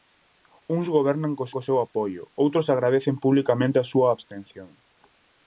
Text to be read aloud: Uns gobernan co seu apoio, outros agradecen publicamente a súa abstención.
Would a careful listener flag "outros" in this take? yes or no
no